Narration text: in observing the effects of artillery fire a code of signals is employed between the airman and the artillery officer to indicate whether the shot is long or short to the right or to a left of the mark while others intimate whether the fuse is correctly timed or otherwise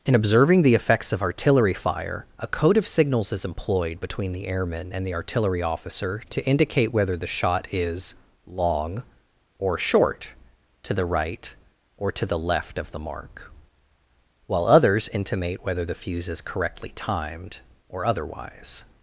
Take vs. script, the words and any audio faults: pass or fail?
fail